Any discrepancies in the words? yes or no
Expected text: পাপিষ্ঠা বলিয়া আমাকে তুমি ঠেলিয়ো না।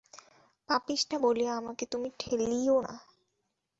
no